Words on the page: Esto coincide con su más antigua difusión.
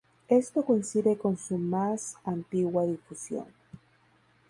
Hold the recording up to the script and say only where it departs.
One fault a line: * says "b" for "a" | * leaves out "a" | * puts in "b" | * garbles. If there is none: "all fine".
all fine